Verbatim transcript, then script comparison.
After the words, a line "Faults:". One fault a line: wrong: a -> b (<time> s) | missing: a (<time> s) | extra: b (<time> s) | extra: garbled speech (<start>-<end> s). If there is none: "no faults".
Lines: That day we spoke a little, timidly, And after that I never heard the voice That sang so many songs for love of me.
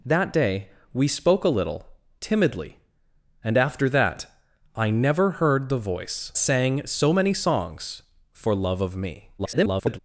That day we spoke a little, timidly, And after that I never heard the voice Sang so many songs for love of me. [garbled]
Faults:
missing: That (6.3 s)
extra: garbled speech (9.4-10.0 s)